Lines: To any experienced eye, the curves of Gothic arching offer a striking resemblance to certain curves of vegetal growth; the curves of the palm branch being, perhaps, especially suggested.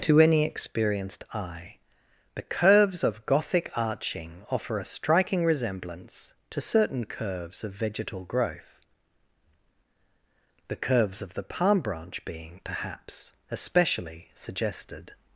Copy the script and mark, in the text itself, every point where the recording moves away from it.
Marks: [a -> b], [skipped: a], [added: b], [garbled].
To any experienced eye, the curves of Gothic arching offer a striking resemblance to certain curves of vegetal growth; the curves of the palm branch being, perhaps, especially suggested.